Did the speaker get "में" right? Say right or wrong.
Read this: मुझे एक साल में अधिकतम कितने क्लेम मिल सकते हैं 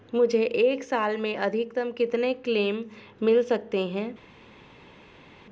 right